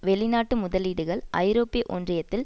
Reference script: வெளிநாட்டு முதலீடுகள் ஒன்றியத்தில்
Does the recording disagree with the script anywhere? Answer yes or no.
yes